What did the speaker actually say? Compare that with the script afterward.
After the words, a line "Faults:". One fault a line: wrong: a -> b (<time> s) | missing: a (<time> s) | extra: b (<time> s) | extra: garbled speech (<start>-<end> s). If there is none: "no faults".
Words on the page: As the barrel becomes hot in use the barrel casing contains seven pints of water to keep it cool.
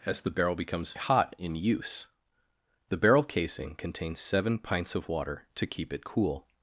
As the barrel becomes hot in use the barrel casing contains seven pints of water to keep it cool.
Faults:
no faults